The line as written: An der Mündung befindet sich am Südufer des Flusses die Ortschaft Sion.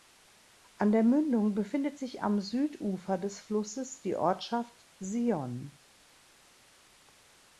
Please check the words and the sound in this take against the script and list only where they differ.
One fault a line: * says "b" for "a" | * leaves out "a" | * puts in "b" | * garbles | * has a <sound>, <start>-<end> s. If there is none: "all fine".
all fine